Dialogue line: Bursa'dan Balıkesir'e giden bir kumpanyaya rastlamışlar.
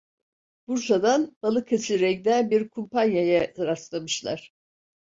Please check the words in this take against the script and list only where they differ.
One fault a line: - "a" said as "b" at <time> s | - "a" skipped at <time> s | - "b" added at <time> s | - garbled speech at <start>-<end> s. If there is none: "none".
none